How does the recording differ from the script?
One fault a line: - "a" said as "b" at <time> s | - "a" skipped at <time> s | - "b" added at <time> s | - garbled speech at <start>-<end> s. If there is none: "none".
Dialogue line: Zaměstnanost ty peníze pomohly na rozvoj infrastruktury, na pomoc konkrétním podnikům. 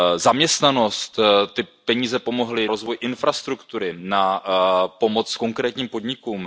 - "na" skipped at 2.7 s